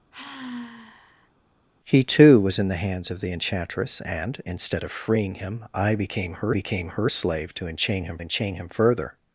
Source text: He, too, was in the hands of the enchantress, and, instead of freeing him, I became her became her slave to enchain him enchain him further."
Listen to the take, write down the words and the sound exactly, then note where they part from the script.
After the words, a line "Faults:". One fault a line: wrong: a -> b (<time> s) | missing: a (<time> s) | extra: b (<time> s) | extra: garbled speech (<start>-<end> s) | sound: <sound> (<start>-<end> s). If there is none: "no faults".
He, too, was in the hands of the enchantress, and, instead of freeing him, I became her became her slave to enchain him enchain him further."
Faults:
sound: sigh (0.1-1.3 s)